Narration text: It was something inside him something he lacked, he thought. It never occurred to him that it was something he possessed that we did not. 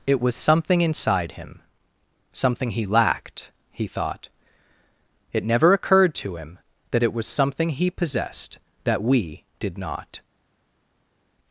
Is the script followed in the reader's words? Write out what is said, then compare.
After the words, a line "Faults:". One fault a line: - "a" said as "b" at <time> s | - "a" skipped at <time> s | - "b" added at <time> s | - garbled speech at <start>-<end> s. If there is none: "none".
It was something inside him something he lacked, he thought. It never occurred to him that it was something he possessed that we did not.
Faults:
none